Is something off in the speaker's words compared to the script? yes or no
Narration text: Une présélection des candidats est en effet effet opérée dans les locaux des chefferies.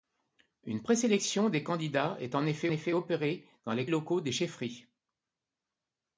no